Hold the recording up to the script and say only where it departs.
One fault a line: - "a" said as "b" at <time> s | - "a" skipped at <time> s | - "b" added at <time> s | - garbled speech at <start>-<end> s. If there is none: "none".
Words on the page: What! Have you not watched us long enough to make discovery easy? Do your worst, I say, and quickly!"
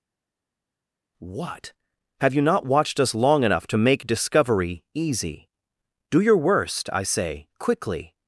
- "and" skipped at 7.5 s